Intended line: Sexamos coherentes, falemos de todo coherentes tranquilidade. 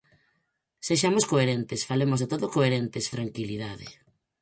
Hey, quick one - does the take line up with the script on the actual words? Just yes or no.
yes